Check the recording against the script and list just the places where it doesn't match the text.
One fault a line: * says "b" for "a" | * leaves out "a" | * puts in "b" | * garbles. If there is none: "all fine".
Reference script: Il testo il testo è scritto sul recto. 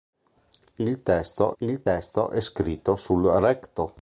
all fine